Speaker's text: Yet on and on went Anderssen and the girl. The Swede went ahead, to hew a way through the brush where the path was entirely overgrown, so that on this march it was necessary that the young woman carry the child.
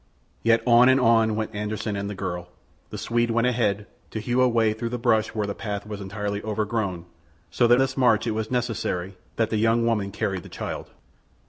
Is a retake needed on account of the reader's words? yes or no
yes